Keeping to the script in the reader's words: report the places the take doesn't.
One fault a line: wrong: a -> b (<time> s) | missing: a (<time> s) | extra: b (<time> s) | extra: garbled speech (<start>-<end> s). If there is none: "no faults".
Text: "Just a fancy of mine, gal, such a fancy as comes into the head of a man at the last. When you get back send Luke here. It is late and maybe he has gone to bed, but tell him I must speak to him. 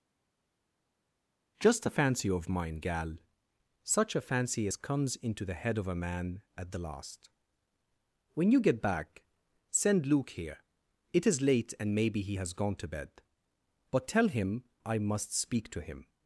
no faults